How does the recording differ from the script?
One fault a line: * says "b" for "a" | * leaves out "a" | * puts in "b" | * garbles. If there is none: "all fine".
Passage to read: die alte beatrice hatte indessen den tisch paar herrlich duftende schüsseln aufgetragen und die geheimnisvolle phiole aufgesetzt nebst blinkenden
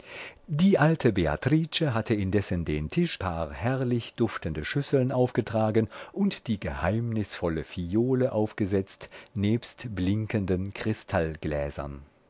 all fine